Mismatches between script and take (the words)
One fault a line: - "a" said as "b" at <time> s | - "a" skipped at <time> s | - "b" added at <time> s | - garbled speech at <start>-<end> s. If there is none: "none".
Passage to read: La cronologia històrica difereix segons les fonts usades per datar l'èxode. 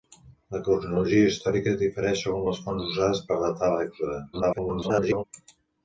- garbled speech at 4.3-5.2 s